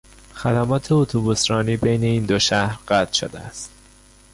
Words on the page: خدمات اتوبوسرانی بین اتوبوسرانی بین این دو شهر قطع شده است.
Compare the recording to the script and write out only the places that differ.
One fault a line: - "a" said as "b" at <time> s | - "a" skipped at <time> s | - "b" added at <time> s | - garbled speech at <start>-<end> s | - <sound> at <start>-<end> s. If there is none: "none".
- "اتوبوسرانی بین" skipped at 2.0 s